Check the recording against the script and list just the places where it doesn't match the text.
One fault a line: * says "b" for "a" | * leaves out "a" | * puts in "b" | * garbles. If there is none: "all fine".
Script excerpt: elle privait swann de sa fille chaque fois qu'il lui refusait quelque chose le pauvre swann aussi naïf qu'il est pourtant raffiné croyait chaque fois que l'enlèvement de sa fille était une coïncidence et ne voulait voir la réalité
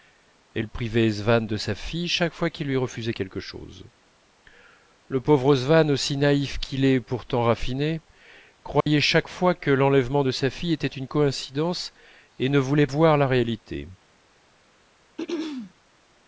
all fine